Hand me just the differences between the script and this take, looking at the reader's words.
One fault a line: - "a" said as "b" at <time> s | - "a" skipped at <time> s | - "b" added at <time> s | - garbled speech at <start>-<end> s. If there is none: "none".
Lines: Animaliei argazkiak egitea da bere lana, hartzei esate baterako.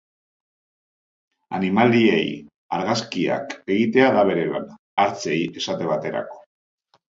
none